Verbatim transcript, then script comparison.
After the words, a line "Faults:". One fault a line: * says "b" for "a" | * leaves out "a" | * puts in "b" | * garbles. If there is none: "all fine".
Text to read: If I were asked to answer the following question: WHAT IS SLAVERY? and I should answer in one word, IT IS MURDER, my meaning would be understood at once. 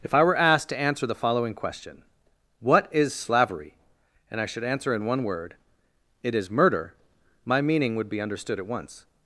If I were asked to answer the following question: WHAT IS SLAVERY? and I should answer in one word, IT IS MURDER, my meaning would be understood at once.
Faults:
all fine